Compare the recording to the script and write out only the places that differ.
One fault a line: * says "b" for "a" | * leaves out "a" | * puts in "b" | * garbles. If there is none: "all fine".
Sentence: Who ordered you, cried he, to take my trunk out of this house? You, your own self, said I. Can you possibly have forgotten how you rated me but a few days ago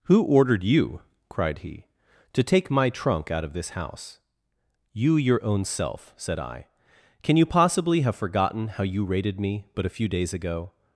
all fine